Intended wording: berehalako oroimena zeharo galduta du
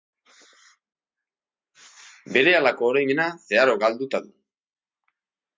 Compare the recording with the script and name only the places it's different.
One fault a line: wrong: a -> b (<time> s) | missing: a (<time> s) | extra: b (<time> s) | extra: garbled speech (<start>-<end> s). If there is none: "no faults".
no faults